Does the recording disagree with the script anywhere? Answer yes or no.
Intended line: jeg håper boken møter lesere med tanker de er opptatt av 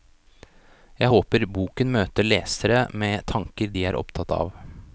no